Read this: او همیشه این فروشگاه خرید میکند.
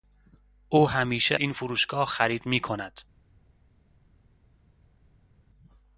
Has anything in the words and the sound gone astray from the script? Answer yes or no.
no